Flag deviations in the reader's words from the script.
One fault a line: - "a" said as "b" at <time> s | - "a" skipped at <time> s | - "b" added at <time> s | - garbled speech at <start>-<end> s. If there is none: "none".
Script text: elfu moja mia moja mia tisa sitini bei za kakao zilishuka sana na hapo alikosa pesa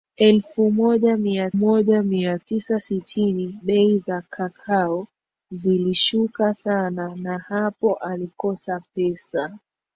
none